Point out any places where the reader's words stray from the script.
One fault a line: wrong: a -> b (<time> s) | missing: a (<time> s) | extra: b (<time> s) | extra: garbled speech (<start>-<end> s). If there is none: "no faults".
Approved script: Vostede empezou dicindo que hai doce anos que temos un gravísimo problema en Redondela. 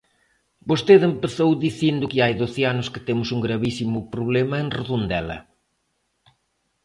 no faults